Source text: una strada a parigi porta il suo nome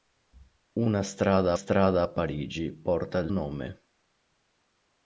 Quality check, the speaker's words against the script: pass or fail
fail